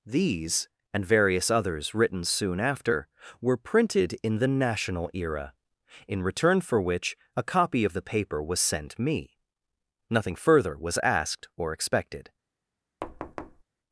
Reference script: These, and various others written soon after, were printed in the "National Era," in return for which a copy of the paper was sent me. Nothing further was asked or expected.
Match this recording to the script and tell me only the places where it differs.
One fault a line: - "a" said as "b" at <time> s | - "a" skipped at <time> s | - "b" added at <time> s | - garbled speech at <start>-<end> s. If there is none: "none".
none